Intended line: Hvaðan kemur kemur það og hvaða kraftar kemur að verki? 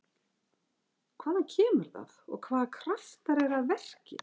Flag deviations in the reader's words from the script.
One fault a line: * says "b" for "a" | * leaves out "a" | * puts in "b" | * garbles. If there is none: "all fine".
* leaves out "kemur"
* says "eru" for "kemur"